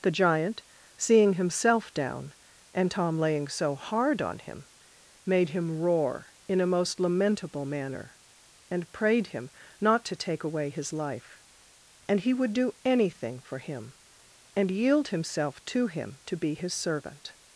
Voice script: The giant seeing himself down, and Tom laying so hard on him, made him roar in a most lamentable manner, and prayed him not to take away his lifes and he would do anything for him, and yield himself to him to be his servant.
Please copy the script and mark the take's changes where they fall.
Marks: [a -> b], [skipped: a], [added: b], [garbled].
The giant seeing himself down, and Tom laying so hard on him, made him roar in a most lamentable manner, and prayed him not to take away his [lifes -> life] and he would do anything for him, and yield himself to him to be his servant.